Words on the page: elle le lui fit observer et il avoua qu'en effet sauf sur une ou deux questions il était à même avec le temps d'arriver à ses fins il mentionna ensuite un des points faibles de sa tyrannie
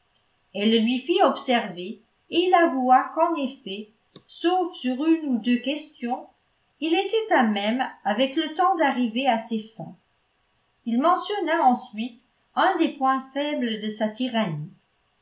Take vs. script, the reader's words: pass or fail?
pass